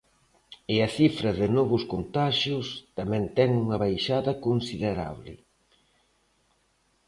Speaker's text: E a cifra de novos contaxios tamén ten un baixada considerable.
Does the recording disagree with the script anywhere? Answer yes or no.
yes